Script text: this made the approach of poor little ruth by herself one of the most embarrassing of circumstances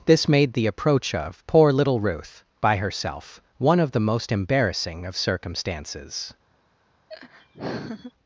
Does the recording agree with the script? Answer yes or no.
yes